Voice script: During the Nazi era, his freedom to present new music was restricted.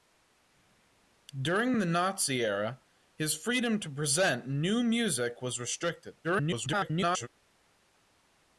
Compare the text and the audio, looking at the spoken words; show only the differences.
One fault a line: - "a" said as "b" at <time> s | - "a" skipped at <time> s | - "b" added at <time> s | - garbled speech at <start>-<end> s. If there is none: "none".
- garbled speech at 6.2-7.3 s